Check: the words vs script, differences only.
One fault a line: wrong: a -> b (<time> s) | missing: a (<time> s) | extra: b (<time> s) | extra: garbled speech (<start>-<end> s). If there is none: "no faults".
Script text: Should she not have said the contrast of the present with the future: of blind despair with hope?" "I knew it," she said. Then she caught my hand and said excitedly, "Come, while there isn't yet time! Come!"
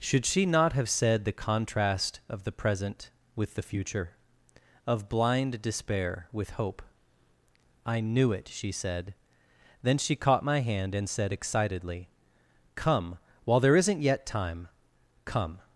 no faults